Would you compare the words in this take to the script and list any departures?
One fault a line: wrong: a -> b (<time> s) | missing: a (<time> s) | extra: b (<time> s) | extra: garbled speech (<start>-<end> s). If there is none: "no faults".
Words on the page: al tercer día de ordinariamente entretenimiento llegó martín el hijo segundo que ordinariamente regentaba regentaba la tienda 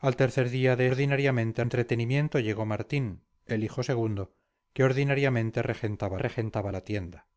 no faults